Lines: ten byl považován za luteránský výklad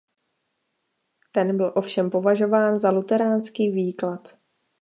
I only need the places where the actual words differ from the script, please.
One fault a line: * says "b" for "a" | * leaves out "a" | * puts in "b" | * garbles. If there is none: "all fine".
* puts in "ovšem"